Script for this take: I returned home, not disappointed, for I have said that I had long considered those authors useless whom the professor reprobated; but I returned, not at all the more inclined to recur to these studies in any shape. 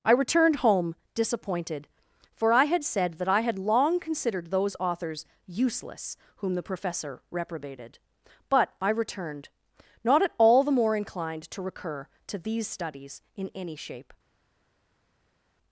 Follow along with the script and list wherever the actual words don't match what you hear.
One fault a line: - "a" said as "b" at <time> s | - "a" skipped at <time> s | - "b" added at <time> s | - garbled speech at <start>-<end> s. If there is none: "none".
- "not" skipped at 0.9 s
- "have" said as "had" at 2.6 s